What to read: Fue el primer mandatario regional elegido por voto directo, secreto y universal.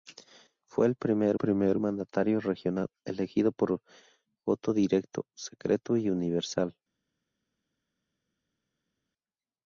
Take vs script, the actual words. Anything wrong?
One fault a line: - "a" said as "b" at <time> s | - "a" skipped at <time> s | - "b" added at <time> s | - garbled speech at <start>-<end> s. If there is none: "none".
- "primer" added at 1.3 s